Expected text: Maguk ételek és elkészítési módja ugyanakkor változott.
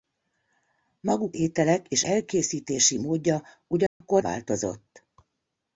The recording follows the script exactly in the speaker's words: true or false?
true